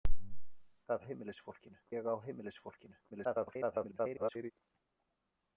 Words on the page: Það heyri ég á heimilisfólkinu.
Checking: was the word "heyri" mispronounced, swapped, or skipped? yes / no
yes